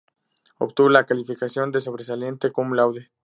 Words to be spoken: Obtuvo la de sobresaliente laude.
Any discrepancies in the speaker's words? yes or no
yes